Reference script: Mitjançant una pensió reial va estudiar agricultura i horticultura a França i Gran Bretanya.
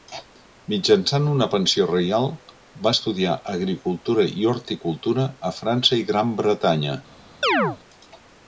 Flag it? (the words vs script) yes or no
no